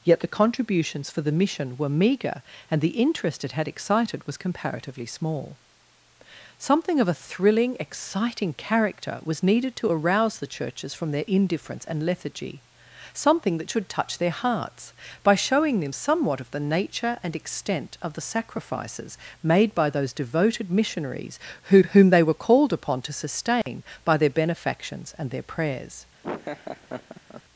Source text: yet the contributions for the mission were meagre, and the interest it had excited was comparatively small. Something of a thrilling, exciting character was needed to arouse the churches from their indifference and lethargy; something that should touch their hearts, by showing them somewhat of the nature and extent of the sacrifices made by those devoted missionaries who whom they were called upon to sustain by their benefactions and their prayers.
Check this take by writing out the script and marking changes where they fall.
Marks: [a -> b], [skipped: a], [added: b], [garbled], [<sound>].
yet the contributions for the mission were meagre, and the interest it had excited was comparatively small. Something of a thrilling, exciting character was needed to arouse the churches from their indifference and lethargy; something that should touch their hearts, by showing them somewhat of the nature and extent of the sacrifices made by those devoted missionaries who whom they were called upon to sustain [dropout] by their benefactions and their prayers. [laugh]